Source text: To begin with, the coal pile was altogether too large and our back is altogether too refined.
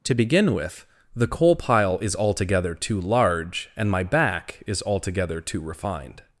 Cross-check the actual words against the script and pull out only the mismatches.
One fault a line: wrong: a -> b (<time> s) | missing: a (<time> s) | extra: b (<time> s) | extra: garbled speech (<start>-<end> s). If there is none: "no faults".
wrong: was -> is (2.0 s)
wrong: our -> my (3.9 s)